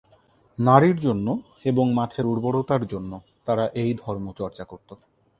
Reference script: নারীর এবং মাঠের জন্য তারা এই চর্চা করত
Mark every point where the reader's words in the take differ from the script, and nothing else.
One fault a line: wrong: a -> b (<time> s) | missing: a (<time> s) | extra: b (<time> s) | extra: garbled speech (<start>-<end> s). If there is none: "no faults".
extra: জন্য (1.0 s)
extra: উর্বরতার (2.2 s)
extra: ধর্ম (4.0 s)